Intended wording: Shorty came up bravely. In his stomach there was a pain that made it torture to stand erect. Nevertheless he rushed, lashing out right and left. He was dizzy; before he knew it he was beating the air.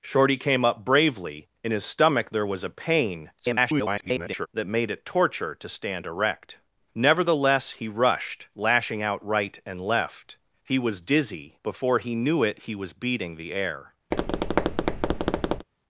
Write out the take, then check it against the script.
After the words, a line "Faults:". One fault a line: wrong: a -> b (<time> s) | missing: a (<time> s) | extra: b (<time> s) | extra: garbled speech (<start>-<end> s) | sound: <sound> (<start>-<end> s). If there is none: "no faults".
Shorty came up bravely. In his stomach there was a pain [garbled] that made it torture to stand erect. Nevertheless he rushed, lashing out right and left. He was dizzy; before he knew it he was beating the air.
Faults:
extra: garbled speech (3.4-4.5 s)
sound: tap (14.1-15.7 s)